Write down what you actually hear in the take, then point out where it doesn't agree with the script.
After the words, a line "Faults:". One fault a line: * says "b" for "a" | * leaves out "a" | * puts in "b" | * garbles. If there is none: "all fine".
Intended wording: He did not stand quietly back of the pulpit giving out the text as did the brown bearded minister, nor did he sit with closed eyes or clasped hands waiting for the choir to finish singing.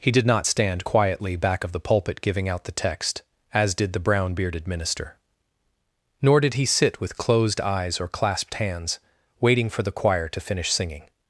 He did not stand quietly back of the pulpit giving out the text as did the brown bearded minister, nor did he sit with closed eyes or clasped hands waiting for the choir to finish singing.
Faults:
all fine